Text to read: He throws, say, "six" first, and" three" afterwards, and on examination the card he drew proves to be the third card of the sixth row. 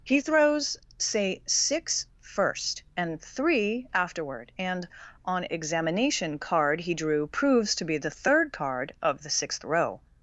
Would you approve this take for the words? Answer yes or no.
no